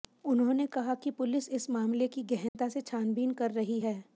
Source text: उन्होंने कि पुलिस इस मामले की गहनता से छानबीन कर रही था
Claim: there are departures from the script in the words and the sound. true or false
true